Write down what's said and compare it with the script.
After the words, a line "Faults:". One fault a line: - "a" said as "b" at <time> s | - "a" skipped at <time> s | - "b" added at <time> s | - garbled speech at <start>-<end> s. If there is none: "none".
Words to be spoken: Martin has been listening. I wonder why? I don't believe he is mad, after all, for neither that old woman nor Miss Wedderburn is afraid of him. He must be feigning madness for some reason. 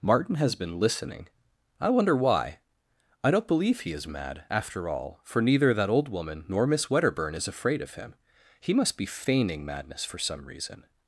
Martin has been listening. I wonder why? I don't believe he is mad, after all, for neither that old woman nor Miss Wedderburn is afraid of him. He must be feigning madness for some reason.
Faults:
none